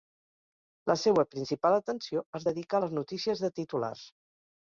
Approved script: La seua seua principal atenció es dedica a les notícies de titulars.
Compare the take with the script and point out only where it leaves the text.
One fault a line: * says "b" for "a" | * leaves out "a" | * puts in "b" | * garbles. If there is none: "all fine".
* leaves out "seua"